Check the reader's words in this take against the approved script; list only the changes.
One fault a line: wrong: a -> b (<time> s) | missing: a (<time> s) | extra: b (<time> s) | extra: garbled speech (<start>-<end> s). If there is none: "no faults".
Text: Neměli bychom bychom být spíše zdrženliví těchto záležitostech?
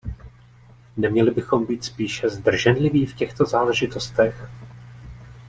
missing: bychom (1.6 s)
extra: v (3.0 s)